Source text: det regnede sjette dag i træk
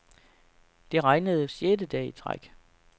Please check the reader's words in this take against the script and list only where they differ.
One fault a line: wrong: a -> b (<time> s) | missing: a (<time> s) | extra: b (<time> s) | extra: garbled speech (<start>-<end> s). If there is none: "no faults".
no faults